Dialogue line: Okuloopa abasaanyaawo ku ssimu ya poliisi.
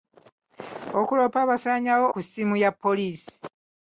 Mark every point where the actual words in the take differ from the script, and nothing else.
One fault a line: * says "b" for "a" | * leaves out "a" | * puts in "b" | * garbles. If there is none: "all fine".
all fine